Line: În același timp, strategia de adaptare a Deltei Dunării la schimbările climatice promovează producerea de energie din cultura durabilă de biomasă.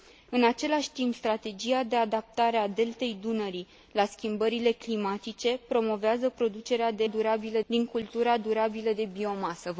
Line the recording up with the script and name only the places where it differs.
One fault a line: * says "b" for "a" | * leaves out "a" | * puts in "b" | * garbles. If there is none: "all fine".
* says "durabilă" for "energie"